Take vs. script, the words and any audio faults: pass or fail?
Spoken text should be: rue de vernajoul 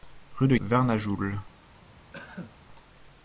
fail